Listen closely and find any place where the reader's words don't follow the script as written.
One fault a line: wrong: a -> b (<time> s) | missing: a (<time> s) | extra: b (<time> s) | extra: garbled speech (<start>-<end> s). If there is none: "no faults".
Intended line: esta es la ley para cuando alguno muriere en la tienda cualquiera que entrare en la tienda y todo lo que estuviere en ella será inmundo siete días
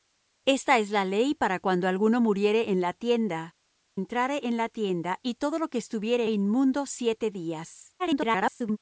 missing: cualquiera que (3.5 s)
missing: en ella será (6.3 s)
extra: garbled speech (8.0-8.8 s)